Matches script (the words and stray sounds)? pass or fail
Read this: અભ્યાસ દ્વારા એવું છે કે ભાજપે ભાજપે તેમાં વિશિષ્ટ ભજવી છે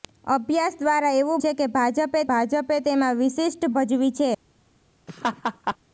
fail